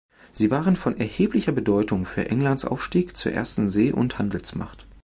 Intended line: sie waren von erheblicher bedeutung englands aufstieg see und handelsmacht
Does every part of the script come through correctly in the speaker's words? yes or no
no